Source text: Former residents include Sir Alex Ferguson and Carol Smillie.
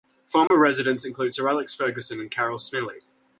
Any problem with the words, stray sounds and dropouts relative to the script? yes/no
yes